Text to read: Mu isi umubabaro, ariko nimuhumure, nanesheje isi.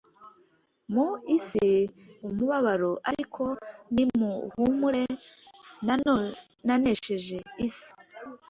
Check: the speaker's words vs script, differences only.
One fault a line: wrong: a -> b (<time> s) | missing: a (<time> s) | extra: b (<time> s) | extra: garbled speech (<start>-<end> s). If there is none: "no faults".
no faults